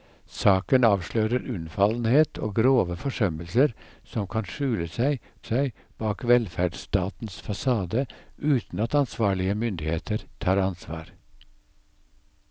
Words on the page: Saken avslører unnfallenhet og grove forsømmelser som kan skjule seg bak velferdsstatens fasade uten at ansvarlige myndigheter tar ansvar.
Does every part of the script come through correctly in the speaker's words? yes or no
no